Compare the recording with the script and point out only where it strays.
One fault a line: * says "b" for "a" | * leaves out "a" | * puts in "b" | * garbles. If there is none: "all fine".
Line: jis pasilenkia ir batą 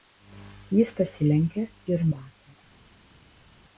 all fine